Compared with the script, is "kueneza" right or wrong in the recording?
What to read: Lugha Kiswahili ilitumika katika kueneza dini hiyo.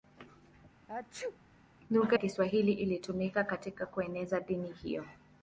right